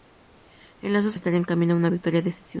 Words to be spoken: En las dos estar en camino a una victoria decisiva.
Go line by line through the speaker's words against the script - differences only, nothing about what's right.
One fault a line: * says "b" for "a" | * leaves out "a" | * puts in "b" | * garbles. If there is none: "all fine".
all fine